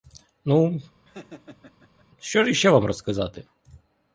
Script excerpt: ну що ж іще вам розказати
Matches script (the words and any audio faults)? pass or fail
fail